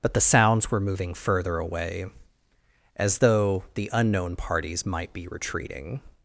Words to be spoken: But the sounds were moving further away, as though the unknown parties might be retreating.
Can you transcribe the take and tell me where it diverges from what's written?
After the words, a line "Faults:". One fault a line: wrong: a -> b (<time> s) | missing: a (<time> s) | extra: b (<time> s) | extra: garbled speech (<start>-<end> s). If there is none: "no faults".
But the sounds were moving further away, as though the unknown parties might be retreating.
Faults:
no faults